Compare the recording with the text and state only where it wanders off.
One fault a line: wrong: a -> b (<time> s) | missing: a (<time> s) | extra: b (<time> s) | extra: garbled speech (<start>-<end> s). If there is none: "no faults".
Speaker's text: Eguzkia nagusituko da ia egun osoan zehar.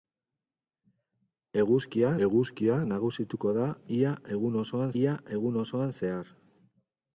extra: eguzkia (2.3 s)
extra: ia egun osoan (5.0 s)